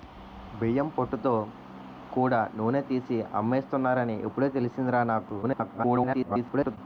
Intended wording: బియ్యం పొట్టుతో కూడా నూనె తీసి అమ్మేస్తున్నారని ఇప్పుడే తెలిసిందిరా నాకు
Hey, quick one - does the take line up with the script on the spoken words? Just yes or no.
no